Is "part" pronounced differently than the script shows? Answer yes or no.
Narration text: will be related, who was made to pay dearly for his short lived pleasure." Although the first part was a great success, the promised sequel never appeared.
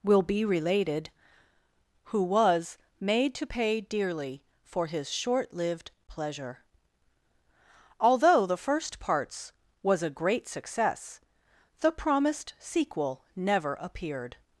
yes